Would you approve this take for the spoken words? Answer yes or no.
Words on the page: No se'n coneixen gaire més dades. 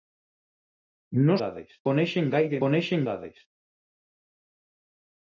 no